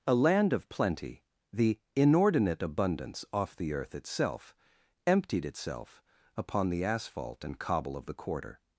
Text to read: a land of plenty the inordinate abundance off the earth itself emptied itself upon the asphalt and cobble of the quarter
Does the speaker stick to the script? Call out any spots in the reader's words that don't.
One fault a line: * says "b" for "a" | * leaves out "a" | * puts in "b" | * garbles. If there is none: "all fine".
all fine